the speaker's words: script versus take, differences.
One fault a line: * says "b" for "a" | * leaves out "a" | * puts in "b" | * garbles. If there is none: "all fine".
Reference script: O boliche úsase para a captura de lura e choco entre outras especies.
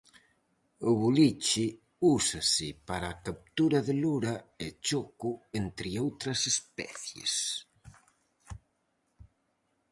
all fine